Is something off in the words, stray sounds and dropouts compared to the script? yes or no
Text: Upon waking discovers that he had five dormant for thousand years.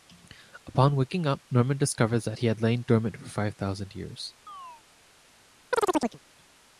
yes